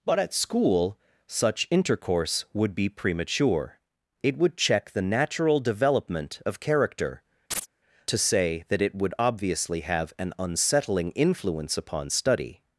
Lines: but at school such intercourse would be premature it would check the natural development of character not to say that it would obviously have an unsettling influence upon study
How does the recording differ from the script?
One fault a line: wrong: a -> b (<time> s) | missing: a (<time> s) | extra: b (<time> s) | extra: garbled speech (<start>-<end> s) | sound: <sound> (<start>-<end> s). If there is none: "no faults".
missing: not (7.2 s)
sound: chirp (7.5-7.7 s)